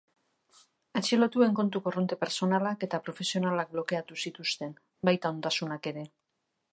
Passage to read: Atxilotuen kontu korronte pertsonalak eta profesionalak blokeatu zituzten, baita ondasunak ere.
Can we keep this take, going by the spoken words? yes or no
yes